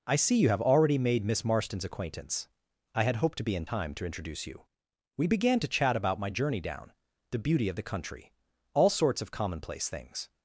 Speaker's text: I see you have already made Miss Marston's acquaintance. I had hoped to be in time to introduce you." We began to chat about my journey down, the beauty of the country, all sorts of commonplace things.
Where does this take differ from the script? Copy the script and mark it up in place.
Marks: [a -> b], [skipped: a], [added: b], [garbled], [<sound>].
I see you have already made Miss Marston's acquaintance. I had hoped to be in time to introduce you." We began to chat about my journey down, the beauty of the country, all sorts of commonplace things.